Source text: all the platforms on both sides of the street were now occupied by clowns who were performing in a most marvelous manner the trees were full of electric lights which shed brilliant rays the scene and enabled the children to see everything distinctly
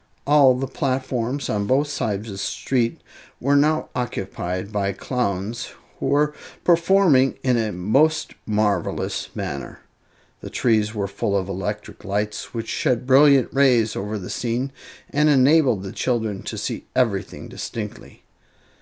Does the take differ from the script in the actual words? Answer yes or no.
yes